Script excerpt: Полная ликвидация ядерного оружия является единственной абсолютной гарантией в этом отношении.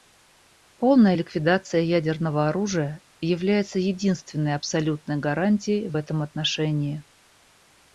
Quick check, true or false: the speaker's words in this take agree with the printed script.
true